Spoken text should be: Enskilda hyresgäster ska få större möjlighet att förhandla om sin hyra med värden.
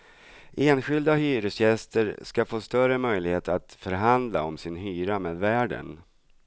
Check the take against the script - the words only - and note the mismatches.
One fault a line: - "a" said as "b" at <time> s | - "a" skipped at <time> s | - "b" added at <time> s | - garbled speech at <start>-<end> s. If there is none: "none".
none